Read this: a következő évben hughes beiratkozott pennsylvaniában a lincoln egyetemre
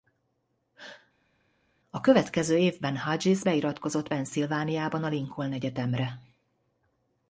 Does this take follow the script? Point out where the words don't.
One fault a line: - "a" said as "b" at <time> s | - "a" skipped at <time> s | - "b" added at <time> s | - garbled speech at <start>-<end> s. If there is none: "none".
none